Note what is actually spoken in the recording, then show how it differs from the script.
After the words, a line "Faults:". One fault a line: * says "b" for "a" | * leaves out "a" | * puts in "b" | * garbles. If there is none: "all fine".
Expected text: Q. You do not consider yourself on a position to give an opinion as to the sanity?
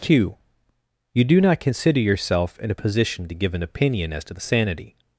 Q. You do not consider yourself in a position to give an opinion as to the sanity?
Faults:
* says "in" for "on"